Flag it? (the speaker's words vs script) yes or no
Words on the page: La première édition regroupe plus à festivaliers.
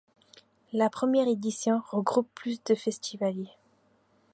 yes